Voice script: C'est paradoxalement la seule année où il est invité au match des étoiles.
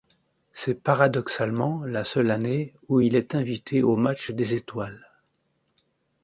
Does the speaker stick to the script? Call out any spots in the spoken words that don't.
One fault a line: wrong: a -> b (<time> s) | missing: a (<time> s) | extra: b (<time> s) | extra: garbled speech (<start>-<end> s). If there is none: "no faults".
no faults